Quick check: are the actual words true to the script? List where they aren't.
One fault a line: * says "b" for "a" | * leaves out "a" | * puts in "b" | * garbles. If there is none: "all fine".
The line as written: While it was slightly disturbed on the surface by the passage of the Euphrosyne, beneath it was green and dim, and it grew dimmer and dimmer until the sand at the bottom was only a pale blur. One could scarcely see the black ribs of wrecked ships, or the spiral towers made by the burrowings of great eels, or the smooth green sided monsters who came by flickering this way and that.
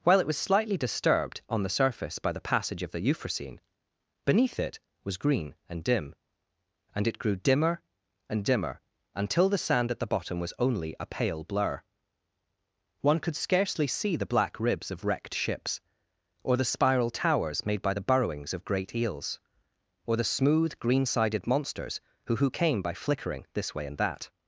* puts in "who"